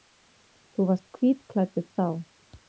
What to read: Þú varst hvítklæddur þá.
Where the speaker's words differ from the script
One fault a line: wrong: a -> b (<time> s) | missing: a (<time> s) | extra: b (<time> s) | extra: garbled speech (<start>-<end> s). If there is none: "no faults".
no faults